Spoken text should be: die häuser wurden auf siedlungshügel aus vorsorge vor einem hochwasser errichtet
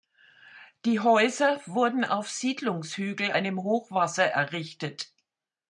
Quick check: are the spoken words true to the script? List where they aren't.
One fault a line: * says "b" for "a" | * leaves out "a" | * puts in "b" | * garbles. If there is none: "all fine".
* leaves out "aus vorsorge vor"